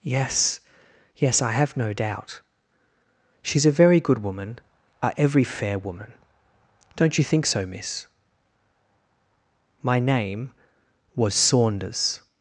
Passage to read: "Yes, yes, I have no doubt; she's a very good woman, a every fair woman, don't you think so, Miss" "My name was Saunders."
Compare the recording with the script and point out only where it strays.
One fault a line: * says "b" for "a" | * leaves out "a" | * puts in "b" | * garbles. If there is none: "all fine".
all fine